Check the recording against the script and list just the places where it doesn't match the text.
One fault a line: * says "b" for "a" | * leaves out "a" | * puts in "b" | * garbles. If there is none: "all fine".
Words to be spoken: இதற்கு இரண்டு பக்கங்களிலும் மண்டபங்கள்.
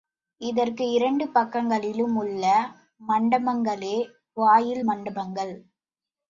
* puts in "உள்ள மண்டபங்களே வாயில்"